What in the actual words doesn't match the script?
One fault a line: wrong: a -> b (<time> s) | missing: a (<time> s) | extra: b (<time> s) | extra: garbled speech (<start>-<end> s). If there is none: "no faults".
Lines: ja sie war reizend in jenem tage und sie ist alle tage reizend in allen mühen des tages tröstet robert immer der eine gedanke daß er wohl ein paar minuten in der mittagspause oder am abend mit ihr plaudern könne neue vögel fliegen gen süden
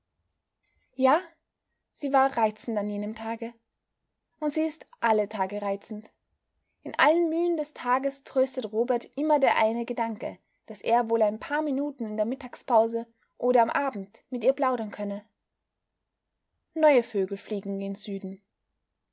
wrong: in -> an (2.8 s)